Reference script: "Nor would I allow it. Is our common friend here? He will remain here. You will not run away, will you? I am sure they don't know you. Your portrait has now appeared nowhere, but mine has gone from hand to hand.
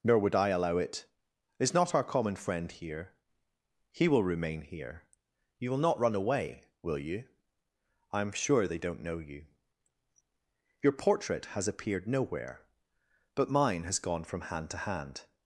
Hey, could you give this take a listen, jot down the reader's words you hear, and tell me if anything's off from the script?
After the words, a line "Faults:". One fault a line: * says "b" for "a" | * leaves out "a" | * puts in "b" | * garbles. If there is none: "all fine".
"Nor would I allow it. Is not our common friend here? He will remain here. You will not run away, will you? I am sure they don't know you. Your portrait has appeared nowhere, but mine has gone from hand to hand.
Faults:
* puts in "not"
* leaves out "now"